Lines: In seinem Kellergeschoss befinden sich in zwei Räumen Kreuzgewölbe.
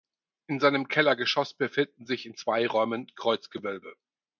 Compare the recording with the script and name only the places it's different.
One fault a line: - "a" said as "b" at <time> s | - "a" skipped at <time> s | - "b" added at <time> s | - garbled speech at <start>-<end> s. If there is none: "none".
none